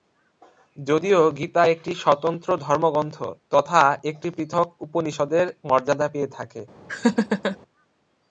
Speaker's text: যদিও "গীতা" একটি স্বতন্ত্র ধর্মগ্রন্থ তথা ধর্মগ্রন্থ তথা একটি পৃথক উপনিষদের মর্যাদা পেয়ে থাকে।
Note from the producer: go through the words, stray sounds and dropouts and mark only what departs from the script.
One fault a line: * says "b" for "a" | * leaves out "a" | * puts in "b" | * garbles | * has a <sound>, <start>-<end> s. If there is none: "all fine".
* leaves out "ধর্মগ্রন্থ তথা"
* has a laugh, 6.9-7.6 s